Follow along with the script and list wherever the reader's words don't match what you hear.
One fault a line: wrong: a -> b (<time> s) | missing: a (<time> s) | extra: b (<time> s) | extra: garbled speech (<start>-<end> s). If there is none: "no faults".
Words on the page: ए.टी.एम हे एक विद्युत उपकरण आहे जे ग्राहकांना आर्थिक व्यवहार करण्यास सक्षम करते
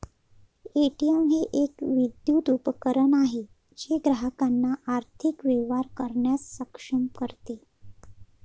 no faults